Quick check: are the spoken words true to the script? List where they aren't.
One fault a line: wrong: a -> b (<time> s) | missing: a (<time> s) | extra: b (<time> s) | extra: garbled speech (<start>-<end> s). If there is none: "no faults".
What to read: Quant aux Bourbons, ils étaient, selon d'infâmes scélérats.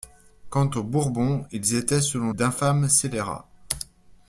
no faults